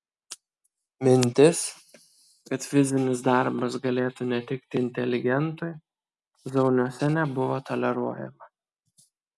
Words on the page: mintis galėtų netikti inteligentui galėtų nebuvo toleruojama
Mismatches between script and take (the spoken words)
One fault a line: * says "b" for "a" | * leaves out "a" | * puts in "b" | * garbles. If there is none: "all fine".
* puts in "kad fizinis darbas"
* says "zauniuose" for "galėtų"